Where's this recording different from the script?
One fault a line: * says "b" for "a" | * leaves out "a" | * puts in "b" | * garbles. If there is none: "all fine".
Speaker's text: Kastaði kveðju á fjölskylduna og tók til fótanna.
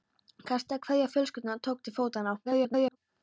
* garbles